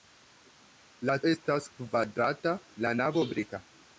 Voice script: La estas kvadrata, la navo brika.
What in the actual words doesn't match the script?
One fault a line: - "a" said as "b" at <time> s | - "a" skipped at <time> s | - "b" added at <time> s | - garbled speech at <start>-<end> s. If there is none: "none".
none